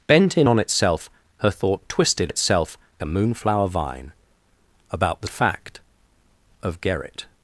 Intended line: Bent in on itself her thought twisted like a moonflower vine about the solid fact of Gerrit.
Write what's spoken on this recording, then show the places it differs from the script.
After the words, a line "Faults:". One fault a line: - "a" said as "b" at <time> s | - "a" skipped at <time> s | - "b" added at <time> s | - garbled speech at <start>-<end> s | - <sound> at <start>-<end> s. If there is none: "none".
Bent in on itself her thought twisted itself a moonflower vine about the fact of Gerrit.
Faults:
- "like" said as "itself" at 2.3 s
- "solid" skipped at 5.3 s